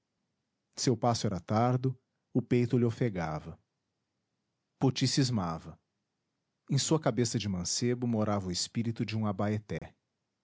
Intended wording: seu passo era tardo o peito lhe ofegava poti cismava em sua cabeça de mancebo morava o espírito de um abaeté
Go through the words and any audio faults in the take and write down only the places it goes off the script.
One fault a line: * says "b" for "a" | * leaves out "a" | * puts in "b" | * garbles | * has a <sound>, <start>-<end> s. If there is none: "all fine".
* has a dropout, 9.8-9.8 s